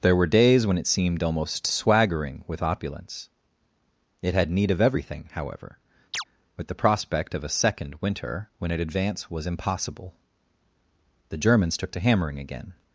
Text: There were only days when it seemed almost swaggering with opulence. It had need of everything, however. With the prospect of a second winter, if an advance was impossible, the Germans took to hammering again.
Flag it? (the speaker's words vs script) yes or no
yes